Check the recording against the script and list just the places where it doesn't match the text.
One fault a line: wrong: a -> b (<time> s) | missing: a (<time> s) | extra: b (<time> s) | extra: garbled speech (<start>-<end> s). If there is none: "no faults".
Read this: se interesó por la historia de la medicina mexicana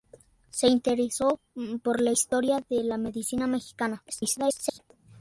extra: garbled speech (4.1-4.8 s)